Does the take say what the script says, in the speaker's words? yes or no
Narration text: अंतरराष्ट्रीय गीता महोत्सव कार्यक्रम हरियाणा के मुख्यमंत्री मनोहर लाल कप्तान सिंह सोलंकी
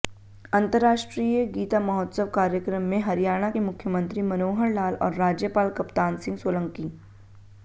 no